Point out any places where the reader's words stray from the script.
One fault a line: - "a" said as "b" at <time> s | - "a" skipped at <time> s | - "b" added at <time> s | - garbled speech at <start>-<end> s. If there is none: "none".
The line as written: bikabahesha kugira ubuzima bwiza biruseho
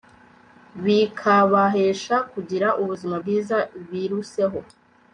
none